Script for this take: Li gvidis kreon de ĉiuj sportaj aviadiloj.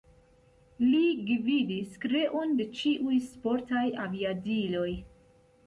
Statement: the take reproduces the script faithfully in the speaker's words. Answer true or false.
true